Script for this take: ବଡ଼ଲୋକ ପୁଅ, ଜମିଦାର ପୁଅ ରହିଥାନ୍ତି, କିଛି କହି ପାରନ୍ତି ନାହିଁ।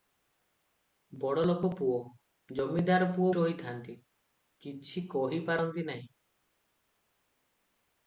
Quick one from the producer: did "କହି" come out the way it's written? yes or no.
yes